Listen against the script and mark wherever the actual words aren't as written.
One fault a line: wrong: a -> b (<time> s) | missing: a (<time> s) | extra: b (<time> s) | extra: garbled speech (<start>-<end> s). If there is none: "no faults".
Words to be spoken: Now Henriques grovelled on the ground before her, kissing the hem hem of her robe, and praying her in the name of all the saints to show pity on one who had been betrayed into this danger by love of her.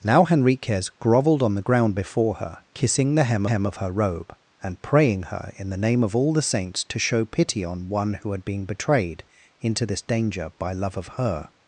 no faults